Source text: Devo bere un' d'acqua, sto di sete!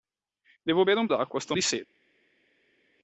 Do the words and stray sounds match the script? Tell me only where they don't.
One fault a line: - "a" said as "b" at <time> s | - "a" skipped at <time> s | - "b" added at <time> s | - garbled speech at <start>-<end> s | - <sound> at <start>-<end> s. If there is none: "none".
none